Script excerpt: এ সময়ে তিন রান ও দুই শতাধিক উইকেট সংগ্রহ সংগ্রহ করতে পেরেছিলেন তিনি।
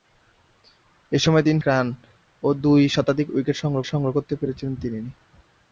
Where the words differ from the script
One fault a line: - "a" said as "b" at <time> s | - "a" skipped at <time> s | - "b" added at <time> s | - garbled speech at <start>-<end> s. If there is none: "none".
none